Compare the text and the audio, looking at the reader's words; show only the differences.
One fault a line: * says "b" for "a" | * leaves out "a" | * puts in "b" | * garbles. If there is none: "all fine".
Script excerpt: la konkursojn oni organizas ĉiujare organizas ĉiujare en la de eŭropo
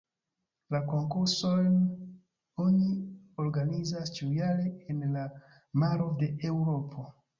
* leaves out "organizas ĉiujare"
* puts in "maro"